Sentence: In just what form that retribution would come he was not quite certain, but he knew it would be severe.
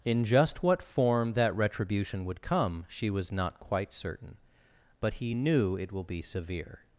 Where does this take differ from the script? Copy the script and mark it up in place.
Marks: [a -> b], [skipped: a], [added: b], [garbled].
In just what form that retribution would come [he -> she] was not quite certain, but he knew it [would -> will] be severe.